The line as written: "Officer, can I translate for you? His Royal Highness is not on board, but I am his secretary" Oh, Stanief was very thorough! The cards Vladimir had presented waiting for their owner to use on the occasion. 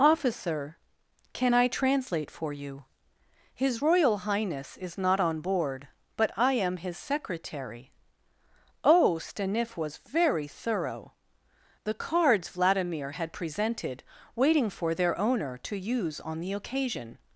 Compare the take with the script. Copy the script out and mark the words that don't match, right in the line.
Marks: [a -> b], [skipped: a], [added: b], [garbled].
"Officer, can I translate for you? His Royal Highness is not on board, but I am his secretary" Oh, Stanief was very thorough! The cards Vladimir had presented waiting for their owner to use on the occasion.